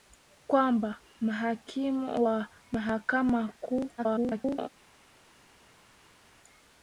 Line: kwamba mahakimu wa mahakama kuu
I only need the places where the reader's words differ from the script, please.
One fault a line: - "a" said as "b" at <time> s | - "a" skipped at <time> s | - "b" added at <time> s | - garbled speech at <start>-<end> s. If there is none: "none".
- garbled speech at 4.0-4.7 s